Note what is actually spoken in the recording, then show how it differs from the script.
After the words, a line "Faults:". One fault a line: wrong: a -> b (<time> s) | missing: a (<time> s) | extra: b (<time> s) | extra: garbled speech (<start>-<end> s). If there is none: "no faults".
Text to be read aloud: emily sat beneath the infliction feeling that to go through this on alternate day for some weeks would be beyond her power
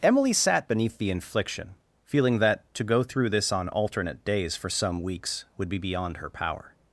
emily sat beneath the infliction feeling that to go through this on alternate days for some weeks would be beyond her power
Faults:
wrong: day -> days (4.2 s)